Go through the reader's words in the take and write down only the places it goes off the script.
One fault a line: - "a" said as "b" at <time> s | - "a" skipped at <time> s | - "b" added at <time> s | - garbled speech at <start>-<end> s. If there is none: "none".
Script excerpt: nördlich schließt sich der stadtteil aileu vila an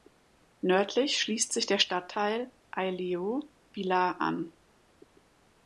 none